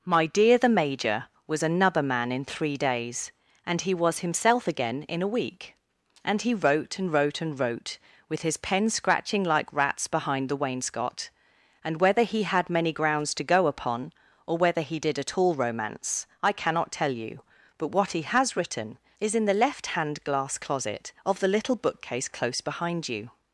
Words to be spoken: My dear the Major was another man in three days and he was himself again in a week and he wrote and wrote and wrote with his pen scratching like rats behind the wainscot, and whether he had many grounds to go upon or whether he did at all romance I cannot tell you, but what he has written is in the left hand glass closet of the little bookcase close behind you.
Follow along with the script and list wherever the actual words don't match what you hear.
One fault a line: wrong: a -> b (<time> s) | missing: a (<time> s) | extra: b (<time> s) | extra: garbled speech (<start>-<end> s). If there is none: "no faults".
no faults